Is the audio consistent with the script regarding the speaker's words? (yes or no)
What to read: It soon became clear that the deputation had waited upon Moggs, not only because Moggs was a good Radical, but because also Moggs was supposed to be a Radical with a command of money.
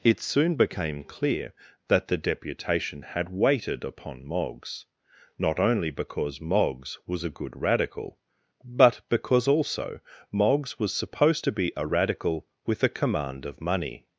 yes